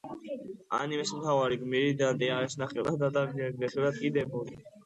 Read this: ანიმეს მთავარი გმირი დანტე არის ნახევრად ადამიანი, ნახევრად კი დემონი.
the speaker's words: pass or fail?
pass